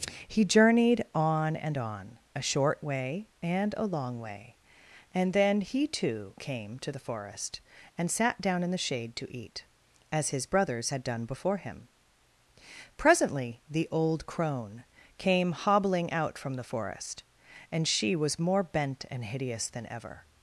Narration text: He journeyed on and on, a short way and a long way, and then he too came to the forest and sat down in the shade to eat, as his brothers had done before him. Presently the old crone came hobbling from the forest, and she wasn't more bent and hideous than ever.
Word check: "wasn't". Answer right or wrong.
wrong